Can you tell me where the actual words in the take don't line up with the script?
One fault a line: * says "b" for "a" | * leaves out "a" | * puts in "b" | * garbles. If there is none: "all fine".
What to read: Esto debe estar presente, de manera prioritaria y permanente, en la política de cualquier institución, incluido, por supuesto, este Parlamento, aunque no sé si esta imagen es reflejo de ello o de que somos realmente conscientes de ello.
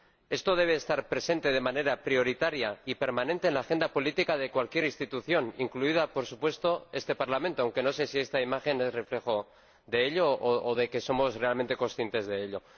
* puts in "agenda"